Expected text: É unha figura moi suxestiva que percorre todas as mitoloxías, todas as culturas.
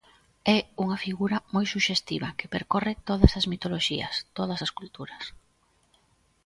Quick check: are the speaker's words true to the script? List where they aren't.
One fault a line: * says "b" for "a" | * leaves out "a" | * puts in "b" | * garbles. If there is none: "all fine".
all fine